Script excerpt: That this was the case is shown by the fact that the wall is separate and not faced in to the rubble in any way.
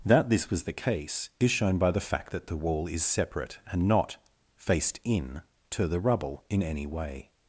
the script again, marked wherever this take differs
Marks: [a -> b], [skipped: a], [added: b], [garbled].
That this was the case is shown by the fact that the wall is separate and not faced in to the rubble in any way.